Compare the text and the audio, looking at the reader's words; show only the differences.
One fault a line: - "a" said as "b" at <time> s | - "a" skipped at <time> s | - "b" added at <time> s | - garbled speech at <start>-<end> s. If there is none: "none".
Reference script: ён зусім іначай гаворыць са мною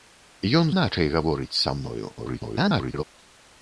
- "зусім" skipped at 0.7 s
- garbled speech at 2.2-3.0 s